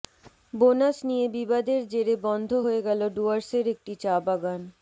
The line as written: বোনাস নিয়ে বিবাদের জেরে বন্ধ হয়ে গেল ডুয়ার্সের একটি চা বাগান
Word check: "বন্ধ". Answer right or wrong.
right